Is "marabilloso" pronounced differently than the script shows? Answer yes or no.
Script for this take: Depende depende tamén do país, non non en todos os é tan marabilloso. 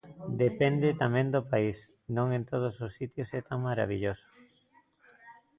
no